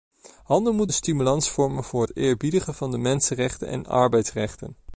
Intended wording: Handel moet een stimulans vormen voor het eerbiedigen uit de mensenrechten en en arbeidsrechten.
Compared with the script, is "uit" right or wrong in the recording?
wrong